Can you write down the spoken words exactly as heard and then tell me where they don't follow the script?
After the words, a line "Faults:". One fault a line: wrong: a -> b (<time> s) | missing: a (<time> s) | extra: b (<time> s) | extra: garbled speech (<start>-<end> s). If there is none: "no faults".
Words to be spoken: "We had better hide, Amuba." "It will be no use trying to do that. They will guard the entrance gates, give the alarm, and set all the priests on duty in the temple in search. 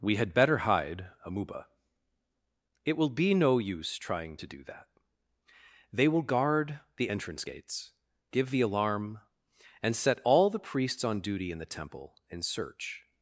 "We had better hide, Amuba." "It will be no use trying to do that. They will guard the entrance gates, give the alarm, and set all the priests on duty in the temple in search.
Faults:
no faults